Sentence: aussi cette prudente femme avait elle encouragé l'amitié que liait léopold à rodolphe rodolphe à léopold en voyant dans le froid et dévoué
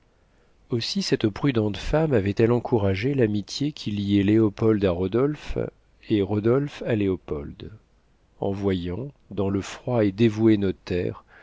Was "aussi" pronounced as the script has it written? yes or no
yes